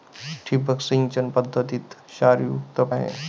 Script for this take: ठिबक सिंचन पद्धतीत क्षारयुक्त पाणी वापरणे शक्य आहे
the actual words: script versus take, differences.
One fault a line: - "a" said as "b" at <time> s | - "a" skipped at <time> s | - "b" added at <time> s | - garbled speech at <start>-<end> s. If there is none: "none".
- "पाणी वापरणे शक्य" skipped at 2.8 s